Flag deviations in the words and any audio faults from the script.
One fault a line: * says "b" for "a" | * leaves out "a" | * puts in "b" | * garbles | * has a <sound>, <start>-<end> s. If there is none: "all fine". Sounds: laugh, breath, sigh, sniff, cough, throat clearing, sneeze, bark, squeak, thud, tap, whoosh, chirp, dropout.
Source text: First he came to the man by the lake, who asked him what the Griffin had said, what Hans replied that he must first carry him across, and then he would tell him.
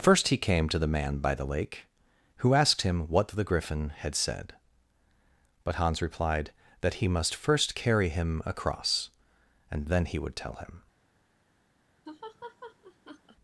* says "but" for "what"
* has a laugh, 12.1-13.4 s